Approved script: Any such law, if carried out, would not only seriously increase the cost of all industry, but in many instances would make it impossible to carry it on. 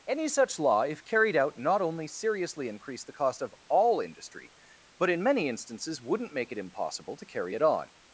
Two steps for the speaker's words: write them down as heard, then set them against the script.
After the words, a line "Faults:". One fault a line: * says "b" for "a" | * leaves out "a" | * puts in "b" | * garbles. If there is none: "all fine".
Any such law, if carried out, not only seriously increase the cost of all industry, but in many instances wouldn't make it impossible to carry it on.
Faults:
* leaves out "would"
* says "wouldn't" for "would"